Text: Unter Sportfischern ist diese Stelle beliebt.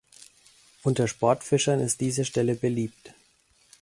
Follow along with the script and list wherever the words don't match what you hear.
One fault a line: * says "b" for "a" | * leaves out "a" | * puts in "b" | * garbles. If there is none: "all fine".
all fine